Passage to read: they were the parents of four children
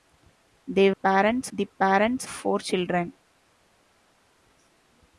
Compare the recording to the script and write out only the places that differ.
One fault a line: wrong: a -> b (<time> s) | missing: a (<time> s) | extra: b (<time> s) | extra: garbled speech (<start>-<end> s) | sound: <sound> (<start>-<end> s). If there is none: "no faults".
wrong: were -> parents (0.9 s)
missing: of (2.3 s)